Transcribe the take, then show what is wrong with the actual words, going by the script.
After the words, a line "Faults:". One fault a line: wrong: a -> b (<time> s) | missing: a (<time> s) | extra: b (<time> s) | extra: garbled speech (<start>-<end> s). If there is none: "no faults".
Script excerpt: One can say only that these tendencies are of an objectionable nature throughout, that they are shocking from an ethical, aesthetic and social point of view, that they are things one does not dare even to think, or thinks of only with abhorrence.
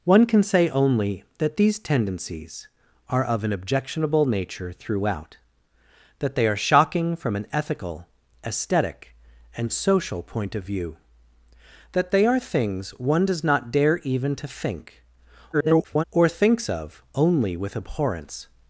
One can say only that these tendencies are of an objectionable nature throughout, that they are shocking from an ethical, aesthetic and social point of view, that they are things one does not dare even to think, [garbled] or thinks of only with abhorrence.
Faults:
extra: garbled speech (15.5-16.0 s)